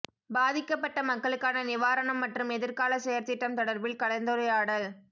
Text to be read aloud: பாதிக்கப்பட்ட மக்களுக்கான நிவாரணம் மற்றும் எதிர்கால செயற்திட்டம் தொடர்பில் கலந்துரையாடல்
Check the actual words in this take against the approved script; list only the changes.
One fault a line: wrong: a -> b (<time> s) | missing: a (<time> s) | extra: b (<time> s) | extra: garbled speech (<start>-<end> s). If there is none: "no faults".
no faults